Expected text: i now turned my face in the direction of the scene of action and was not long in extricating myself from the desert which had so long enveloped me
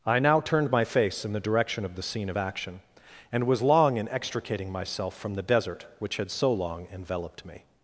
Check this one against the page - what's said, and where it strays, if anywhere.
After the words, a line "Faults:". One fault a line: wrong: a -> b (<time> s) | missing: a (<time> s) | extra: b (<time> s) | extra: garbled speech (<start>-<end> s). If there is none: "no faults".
i now turned my face in the direction of the scene of action and was long in extricating myself from the desert which had so long enveloped me
Faults:
missing: not (3.6 s)